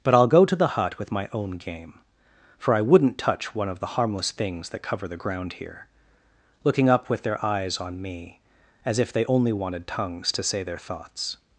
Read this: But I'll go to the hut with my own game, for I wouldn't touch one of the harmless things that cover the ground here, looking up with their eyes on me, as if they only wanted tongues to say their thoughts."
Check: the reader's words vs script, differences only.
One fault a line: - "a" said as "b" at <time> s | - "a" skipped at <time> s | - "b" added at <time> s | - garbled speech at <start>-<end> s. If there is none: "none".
none